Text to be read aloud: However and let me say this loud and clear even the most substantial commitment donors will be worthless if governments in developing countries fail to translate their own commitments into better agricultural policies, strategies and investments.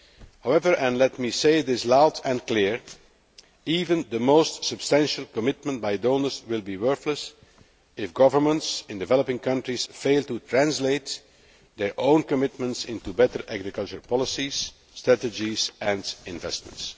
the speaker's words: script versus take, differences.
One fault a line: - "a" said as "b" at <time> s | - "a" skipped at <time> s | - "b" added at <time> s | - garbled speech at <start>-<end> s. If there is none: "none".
- "by" added at 5.8 s